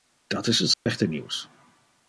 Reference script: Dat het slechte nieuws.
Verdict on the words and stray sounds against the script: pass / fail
fail